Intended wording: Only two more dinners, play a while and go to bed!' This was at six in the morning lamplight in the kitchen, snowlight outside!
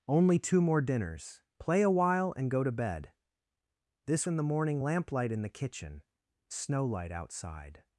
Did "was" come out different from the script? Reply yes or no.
yes